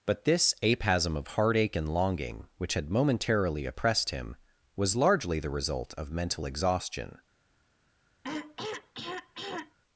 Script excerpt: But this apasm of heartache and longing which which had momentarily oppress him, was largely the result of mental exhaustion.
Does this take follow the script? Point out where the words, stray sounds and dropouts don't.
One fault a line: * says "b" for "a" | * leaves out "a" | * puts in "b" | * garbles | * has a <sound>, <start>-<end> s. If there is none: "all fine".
* leaves out "which"
* says "oppressed" for "oppress"
* has a throat clearing, 8.2-9.8 s